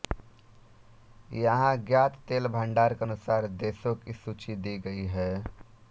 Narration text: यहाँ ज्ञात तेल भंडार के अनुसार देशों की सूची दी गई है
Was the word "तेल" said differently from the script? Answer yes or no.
no